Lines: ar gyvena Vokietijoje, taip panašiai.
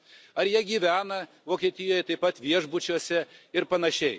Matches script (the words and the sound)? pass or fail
fail